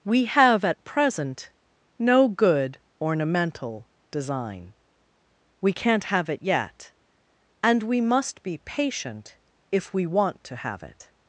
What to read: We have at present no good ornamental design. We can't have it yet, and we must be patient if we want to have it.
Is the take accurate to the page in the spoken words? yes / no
yes